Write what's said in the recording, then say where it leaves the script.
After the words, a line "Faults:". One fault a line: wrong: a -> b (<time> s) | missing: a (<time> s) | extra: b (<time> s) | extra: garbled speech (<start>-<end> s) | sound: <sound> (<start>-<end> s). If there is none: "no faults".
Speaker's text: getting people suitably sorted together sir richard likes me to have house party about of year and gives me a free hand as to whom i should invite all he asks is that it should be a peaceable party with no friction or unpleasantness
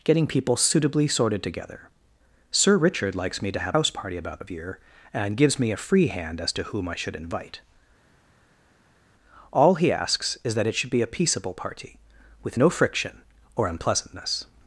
getting people suitably sorted together sir richard likes me to have house party about of year and gives me a free hand as to whom i should invite all he asks is that it should be a peaceable party with no friction or unpleasantness
Faults:
no faults